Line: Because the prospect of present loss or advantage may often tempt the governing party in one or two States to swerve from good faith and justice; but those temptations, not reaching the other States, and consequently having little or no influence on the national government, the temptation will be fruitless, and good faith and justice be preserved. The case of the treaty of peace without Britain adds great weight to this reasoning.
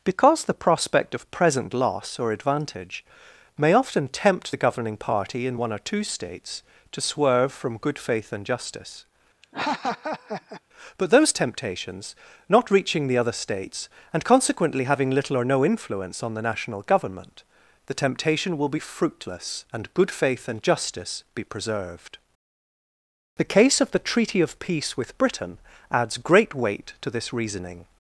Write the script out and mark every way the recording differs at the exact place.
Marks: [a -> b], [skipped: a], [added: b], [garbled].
Because the prospect of present loss or advantage may often tempt the governing party in one or two States to swerve from good faith and justice; but those temptations, not reaching the other States, and consequently having little or no influence on the national government, the temptation will be fruitless, and good faith and justice be preserved. The case of the treaty of peace [without -> with] Britain adds great weight to this reasoning.